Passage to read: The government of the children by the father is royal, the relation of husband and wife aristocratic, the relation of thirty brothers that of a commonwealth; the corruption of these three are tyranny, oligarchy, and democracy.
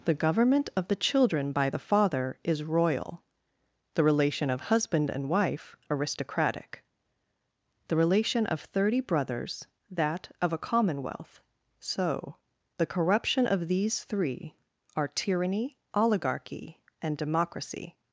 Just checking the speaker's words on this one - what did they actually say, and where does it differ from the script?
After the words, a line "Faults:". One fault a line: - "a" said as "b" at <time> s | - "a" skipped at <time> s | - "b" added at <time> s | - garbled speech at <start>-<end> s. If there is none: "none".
The government of the children by the father is royal, the relation of husband and wife aristocratic, the relation of thirty brothers that of a commonwealth; so the corruption of these three are tyranny, oligarchy, and democracy.
Faults:
- "so" added at 11.8 s